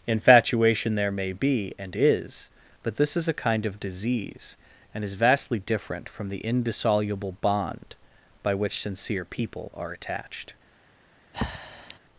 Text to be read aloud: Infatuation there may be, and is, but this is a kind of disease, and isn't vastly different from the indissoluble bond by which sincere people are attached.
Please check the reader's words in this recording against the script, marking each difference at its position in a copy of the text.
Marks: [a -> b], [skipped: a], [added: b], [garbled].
Infatuation there may be, and is, but this is a kind of disease, and [isn't -> is] vastly different from the indissoluble bond by which sincere people are attached.